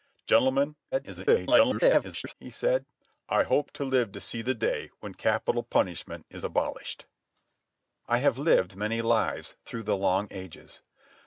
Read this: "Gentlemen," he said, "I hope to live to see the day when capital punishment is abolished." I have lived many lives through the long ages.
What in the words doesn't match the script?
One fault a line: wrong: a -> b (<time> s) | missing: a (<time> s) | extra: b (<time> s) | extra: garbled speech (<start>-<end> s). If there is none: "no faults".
extra: garbled speech (0.9-2.3 s)